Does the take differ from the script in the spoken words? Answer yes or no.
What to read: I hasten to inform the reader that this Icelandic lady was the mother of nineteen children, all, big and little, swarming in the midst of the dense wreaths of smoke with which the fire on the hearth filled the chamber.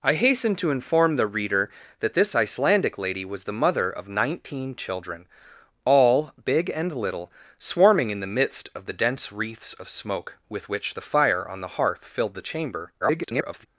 yes